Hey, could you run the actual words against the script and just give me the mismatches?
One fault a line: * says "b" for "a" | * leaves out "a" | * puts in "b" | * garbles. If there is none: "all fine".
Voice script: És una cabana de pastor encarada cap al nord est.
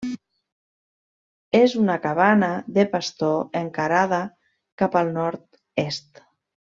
all fine